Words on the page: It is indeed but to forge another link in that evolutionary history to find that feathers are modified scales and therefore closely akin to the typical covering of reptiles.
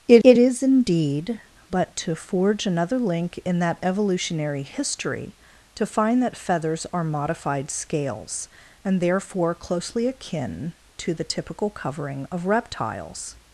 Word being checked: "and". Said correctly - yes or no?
yes